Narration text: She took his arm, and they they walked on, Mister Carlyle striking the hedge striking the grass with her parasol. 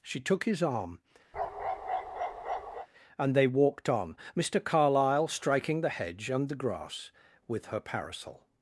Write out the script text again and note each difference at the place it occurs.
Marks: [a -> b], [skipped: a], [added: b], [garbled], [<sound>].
She took his arm, [bark] and they [skipped: they] walked on, Mister Carlyle striking the hedge [striking -> and] the grass with her parasol.